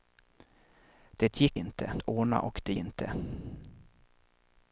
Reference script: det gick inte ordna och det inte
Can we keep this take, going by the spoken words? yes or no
yes